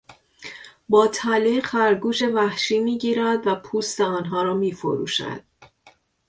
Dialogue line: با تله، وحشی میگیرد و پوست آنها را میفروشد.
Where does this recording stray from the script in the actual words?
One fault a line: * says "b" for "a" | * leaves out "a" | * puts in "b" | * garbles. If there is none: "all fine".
* puts in "خرگوش"